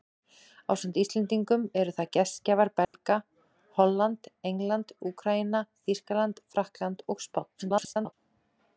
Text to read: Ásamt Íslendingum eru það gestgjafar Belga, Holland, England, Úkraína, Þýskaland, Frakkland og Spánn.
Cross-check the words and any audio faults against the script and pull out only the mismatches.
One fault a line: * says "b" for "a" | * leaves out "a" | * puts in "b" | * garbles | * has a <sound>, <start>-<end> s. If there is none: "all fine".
* has a dropout, 2.8-2.9 s
* garbles